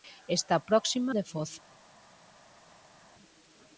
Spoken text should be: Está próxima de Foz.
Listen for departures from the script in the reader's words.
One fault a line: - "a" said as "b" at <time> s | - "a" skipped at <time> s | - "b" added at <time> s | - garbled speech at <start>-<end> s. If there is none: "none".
none